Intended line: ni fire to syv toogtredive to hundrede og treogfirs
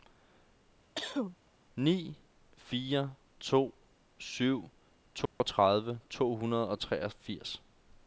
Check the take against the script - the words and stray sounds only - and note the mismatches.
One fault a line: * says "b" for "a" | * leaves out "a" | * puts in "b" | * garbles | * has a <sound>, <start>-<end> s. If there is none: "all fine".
* has a cough, 1.0-1.4 s
* has a dropout, 5.3-5.4 s